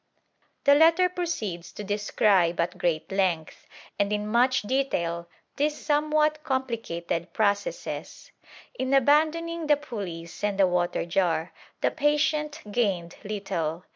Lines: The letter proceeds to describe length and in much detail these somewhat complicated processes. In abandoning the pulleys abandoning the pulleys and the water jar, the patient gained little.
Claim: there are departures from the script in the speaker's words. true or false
true